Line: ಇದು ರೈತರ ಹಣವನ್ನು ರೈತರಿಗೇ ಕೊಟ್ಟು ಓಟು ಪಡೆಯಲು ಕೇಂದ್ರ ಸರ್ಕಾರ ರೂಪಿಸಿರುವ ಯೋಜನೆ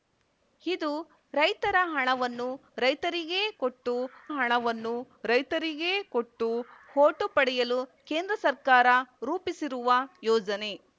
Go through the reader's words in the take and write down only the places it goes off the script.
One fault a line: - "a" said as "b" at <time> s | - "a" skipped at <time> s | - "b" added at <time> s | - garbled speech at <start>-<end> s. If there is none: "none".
- "ಹಣವನ್ನು ರೈತರಿಗೇ ಕೊಟ್ಟು" added at 4.3 s